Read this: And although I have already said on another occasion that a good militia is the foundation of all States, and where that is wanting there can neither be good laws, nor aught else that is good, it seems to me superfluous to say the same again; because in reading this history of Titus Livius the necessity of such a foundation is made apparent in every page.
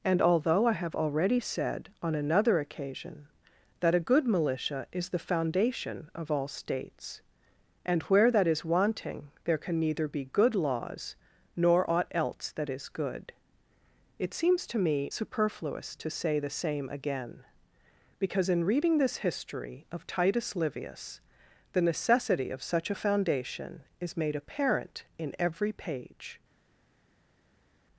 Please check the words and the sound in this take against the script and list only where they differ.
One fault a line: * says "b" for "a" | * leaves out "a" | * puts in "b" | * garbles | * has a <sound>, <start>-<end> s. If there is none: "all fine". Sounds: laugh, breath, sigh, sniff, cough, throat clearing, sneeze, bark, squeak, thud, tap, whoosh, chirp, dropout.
all fine